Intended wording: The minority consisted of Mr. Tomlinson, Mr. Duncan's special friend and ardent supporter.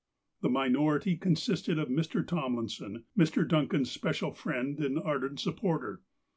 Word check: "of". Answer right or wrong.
right